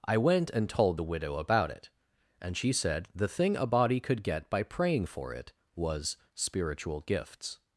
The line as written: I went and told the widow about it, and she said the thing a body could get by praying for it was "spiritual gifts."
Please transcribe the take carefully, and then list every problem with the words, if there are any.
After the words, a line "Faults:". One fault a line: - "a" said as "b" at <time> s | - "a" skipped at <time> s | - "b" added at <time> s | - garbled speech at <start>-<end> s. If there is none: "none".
I went and told the widow about it, and she said the thing a body could get by praying for it was "spiritual gifts."
Faults:
none